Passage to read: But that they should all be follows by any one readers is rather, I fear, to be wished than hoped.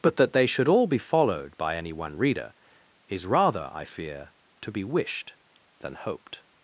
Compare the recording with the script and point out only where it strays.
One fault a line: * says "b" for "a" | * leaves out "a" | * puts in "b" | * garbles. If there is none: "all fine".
* says "followed" for "follows"
* says "reader" for "readers"